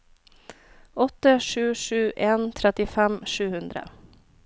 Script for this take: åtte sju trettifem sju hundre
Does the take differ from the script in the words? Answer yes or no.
yes